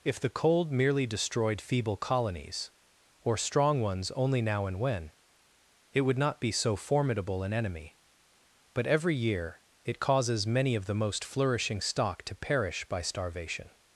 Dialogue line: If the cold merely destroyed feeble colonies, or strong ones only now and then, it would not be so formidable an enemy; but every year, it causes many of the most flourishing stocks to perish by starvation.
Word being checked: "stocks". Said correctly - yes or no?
no